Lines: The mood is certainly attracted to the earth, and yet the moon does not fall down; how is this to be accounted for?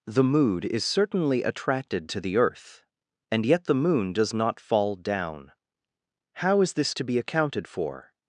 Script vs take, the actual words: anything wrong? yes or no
no